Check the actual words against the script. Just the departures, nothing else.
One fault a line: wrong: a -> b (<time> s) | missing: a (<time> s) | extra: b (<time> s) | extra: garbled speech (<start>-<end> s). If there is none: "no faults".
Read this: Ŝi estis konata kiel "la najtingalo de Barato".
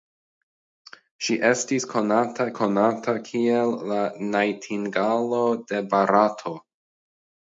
extra: konata (2.6 s)